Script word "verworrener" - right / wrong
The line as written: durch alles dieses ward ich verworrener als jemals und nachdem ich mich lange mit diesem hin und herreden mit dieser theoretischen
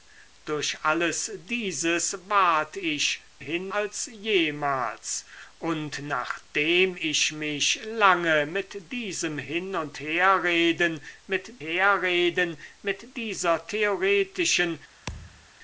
wrong